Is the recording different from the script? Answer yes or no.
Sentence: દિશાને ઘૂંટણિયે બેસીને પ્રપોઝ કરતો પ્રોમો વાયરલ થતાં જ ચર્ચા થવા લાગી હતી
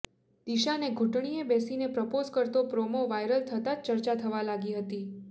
no